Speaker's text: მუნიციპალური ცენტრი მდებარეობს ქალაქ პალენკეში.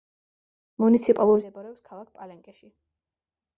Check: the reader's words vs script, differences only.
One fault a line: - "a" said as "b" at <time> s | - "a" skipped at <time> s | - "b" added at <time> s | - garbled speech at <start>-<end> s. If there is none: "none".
- "ცენტრი" skipped at 1.4 s